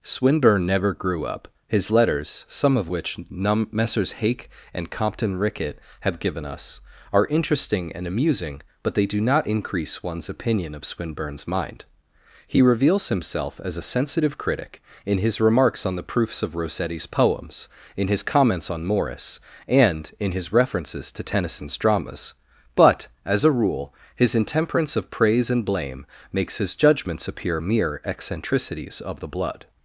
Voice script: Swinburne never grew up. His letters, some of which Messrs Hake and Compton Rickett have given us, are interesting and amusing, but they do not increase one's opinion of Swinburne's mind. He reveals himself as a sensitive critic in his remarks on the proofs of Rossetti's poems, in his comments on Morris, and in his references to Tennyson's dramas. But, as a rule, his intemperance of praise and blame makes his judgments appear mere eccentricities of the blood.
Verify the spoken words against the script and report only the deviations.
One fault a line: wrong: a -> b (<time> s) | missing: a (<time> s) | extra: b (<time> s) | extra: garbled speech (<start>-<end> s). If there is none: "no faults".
extra: num (3.3 s)